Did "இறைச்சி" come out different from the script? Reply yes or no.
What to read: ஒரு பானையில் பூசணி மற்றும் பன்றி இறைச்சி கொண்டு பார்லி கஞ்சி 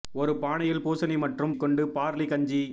yes